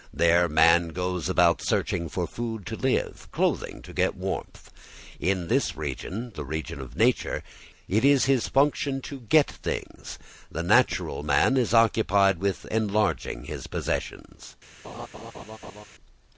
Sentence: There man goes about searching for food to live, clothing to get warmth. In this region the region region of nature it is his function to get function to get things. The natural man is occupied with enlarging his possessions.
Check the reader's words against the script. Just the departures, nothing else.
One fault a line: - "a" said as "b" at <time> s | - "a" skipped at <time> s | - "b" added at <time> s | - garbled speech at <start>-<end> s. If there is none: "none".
- "region" skipped at 6.8 s
- "function to get" skipped at 9.5 s